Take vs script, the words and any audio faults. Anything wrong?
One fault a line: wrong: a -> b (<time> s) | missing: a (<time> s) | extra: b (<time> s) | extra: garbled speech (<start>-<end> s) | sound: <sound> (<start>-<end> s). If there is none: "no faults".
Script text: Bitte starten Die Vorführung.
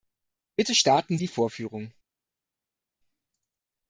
no faults